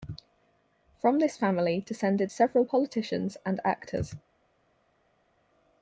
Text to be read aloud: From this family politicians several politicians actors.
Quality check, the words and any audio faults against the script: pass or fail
fail